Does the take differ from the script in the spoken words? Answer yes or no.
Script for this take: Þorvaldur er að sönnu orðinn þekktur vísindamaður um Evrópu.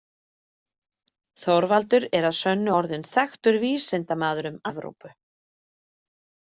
no